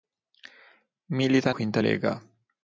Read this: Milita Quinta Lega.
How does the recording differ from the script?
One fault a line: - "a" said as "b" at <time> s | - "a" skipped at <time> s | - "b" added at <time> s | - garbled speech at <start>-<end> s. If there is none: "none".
none